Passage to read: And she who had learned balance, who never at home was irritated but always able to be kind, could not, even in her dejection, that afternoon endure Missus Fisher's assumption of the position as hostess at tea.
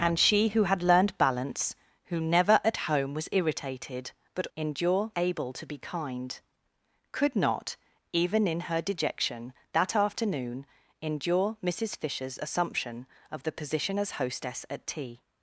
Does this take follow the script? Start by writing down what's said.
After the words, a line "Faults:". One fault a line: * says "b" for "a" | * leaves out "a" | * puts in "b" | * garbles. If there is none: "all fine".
And she who had learned balance, who never at home was irritated but endure able to be kind, could not, even in her dejection, that afternoon endure Missus Fisher's assumption of the position as hostess at tea.
Faults:
* says "endure" for "always"